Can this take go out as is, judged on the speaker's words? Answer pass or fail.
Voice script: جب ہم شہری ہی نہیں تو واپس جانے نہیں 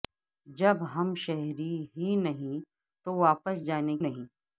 pass